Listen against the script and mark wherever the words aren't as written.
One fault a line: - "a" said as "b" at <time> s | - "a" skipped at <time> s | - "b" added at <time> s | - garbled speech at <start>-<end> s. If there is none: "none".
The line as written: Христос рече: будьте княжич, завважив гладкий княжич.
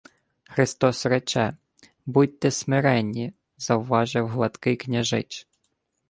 - "княжич" said as "смиренні" at 2.5 s